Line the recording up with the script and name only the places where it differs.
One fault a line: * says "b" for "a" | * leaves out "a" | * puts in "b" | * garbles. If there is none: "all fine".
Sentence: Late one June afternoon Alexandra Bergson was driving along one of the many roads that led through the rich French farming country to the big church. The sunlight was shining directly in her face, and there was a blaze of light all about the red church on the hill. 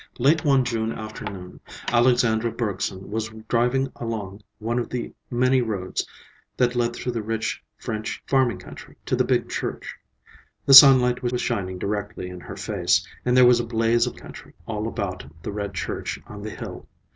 * puts in "was"
* says "country" for "light"